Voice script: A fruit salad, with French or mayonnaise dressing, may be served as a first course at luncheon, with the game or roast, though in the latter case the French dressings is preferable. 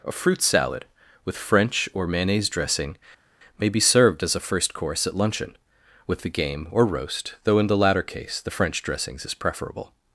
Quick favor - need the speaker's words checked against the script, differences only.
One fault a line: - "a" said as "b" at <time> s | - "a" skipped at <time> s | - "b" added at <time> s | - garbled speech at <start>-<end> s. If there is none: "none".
none